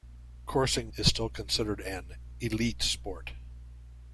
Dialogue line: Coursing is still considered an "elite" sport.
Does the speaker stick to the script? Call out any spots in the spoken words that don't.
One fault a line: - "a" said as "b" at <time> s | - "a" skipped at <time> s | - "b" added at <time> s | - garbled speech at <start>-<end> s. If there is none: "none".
none